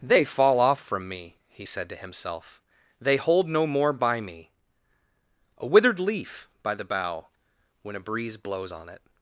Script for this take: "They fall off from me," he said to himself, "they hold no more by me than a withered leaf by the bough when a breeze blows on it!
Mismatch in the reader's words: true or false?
true